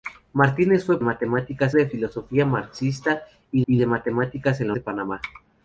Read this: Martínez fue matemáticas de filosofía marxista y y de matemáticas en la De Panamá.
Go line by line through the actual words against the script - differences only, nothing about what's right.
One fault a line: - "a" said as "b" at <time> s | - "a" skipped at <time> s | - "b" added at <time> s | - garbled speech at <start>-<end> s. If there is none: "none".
none